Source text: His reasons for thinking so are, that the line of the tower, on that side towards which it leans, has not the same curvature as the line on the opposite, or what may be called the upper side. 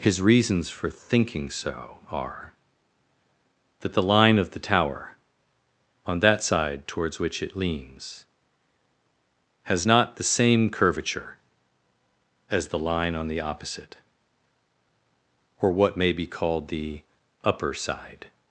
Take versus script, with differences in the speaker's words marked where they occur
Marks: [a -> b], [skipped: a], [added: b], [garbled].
His reasons for thinking so are, that the line of the tower, on that side towards which it leans, has not the same curvature as the line on the opposite, or what may be called the upper side.